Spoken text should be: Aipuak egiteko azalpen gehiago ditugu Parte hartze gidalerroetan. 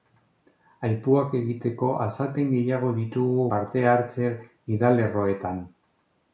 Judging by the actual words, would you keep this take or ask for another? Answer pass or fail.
pass